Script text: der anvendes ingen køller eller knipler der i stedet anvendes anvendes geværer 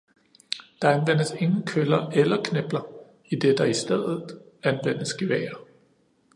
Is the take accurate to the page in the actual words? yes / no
no